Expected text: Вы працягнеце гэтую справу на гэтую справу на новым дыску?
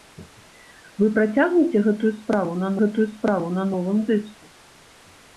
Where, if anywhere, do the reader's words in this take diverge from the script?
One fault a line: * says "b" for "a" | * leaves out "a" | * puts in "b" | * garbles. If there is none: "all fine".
all fine